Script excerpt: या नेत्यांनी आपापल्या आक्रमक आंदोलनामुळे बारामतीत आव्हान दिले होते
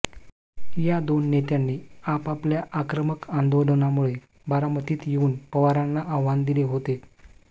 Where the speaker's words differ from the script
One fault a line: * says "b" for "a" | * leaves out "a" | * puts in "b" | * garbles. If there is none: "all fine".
* puts in "दोन"
* puts in "येऊन पवारांना"